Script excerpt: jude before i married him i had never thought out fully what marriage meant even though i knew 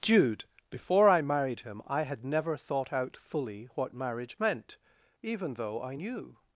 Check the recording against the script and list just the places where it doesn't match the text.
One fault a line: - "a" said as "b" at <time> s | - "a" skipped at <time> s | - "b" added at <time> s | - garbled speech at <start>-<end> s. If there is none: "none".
none